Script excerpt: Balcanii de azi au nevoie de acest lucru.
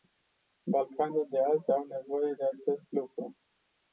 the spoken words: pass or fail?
pass